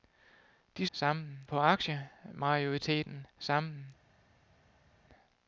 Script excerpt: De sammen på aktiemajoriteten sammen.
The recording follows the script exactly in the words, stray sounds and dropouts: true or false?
true